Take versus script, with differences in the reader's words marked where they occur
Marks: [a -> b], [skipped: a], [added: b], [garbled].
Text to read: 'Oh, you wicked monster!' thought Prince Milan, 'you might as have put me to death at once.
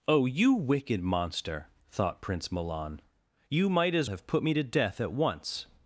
'Oh, you wicked monster!' thought Prince Milan, 'you might as have put me to death at once.